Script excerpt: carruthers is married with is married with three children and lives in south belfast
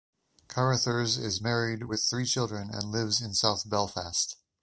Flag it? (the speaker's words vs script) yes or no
yes